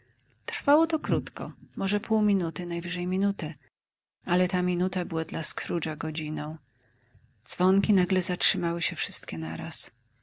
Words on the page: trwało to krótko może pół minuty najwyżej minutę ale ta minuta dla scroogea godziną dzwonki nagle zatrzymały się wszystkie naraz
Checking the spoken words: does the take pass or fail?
fail